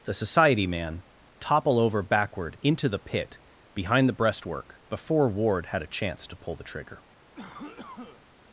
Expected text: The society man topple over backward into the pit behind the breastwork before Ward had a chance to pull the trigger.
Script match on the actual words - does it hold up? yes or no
yes